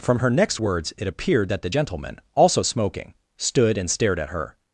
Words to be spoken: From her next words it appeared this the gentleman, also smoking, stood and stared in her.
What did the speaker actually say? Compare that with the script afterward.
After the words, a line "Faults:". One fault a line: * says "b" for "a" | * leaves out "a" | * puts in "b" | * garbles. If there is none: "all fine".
From her next words it appeared that the gentleman, also smoking, stood and stared at her.
Faults:
* says "that" for "this"
* says "at" for "in"